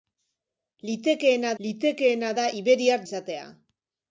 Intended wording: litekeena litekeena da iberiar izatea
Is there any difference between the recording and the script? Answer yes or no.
no